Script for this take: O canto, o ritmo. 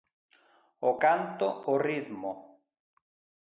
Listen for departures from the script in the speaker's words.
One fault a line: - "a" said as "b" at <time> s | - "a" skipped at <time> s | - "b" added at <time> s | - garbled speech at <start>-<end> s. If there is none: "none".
none